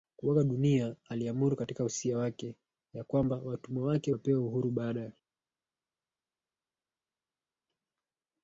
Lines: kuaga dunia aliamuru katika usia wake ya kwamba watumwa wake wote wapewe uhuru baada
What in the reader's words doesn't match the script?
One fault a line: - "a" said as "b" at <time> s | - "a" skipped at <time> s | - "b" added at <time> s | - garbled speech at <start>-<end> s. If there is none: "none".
- "wote" skipped at 4.1 s